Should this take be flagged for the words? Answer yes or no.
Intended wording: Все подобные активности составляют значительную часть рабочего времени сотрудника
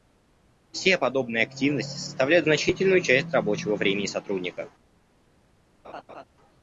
no